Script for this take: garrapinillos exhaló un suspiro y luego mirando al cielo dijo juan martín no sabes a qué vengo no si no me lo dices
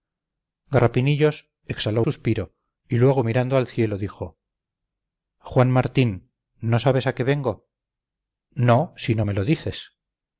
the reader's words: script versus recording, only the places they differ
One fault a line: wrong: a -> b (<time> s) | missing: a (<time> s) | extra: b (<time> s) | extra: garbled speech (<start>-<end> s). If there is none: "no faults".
missing: un (2.0 s)